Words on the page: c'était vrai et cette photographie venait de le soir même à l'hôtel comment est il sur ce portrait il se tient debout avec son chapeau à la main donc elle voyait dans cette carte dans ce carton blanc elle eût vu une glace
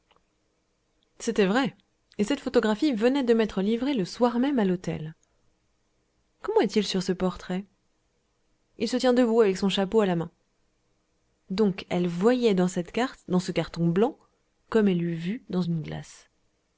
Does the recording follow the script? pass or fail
fail